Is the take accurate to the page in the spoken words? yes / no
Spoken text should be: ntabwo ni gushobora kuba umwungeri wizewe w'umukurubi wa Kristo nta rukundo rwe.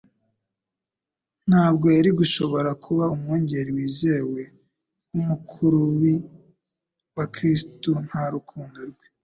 no